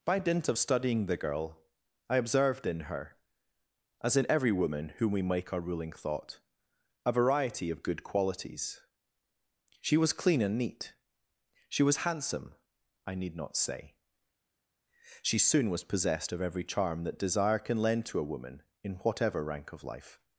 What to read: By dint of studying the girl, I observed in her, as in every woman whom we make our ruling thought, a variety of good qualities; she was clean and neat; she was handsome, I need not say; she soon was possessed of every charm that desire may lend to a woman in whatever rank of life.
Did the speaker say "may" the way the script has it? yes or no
no